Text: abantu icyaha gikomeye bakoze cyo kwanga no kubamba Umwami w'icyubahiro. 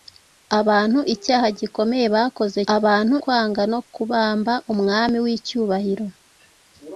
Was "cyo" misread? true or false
true